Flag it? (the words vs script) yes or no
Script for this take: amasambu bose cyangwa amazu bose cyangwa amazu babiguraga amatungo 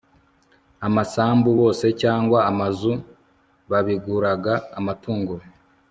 yes